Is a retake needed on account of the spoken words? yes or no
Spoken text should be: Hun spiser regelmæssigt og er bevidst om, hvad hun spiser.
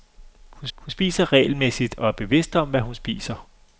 yes